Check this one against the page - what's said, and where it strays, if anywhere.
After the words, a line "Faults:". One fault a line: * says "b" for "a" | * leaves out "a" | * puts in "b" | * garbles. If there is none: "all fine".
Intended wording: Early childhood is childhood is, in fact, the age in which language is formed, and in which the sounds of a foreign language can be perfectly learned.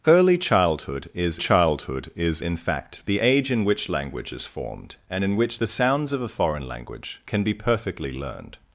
Early childhood is childhood is, in fact, the age in which language is formed, and in which the sounds of a foreign language can be perfectly learned.
Faults:
all fine